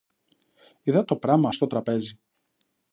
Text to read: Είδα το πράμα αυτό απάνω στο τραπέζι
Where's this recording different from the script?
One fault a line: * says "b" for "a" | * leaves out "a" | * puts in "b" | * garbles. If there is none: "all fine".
* leaves out "αυτό απάνω"